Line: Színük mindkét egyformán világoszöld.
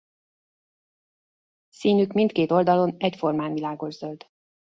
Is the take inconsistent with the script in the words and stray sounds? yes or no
yes